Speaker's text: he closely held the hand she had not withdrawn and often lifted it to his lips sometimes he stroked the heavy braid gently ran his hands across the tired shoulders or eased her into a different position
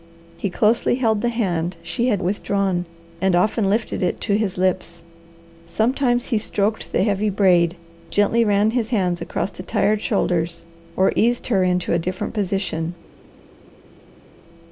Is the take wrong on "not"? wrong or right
wrong